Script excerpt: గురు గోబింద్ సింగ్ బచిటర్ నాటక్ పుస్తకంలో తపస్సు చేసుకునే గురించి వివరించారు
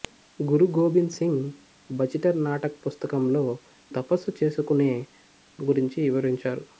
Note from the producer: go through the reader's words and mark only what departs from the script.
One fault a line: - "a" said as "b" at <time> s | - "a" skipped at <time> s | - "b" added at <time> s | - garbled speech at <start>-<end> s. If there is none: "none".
none